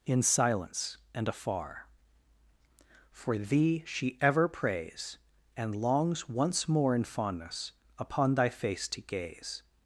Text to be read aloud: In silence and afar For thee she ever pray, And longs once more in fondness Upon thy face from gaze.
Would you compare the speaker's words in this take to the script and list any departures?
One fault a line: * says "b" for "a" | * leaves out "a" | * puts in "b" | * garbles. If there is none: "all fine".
* says "prays" for "pray"
* says "to" for "from"